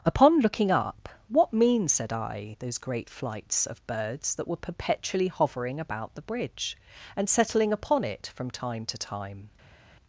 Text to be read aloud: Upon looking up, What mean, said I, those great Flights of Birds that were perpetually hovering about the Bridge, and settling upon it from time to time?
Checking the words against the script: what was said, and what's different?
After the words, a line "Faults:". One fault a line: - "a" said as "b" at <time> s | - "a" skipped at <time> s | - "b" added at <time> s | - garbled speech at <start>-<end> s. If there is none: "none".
Upon looking up, What mean, said I, those great Flights of Birds that were perpetually hovering about the Bridge, and settling upon it from time to time?
Faults:
none